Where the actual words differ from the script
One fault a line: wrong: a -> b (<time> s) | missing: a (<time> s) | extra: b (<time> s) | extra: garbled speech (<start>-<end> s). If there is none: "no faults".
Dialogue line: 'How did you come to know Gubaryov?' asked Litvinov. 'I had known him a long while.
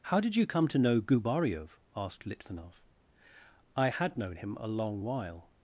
no faults